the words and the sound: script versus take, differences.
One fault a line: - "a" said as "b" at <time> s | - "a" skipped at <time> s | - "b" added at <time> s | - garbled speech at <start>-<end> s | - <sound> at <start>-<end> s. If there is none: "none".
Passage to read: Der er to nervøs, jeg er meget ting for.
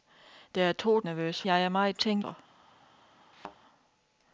- thud at 3.3-3.6 s